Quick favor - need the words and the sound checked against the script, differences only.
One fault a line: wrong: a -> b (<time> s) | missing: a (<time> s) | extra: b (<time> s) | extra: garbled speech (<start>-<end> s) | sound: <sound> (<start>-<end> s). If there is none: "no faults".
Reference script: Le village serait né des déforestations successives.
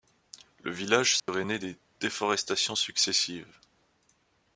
sound: dropout (1.2-1.3 s)